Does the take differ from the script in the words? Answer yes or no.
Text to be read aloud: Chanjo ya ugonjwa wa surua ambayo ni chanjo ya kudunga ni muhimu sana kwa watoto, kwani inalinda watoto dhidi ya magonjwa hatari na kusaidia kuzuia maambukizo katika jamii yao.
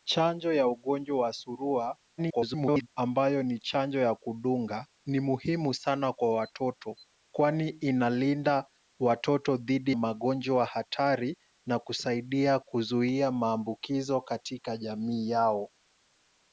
yes